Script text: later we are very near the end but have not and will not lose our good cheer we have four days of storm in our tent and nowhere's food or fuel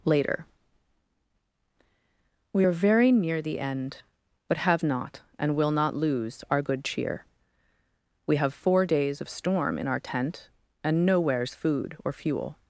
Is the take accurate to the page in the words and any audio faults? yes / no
yes